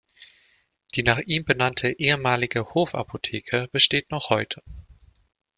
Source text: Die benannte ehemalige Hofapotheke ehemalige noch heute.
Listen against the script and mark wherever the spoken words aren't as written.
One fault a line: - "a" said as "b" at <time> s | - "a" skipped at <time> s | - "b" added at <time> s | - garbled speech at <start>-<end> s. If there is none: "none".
- "nach ihm" added at 1.0 s
- "ehemalige" said as "besteht" at 3.7 s